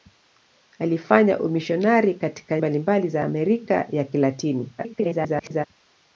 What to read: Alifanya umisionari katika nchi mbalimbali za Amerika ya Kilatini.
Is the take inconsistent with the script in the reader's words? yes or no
yes